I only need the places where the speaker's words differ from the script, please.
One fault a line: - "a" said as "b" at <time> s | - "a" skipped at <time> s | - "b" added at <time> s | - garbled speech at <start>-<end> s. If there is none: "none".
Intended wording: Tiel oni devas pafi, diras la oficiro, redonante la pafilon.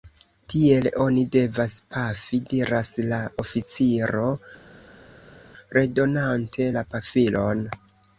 none